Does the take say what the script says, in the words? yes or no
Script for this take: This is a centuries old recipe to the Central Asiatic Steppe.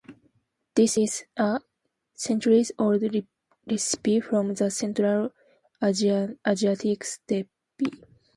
no